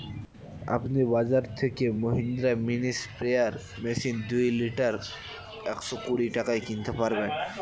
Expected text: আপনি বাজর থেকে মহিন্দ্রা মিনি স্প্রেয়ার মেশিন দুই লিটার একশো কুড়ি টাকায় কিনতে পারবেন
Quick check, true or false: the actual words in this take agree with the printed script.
true